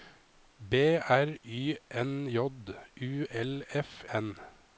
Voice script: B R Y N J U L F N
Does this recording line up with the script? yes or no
yes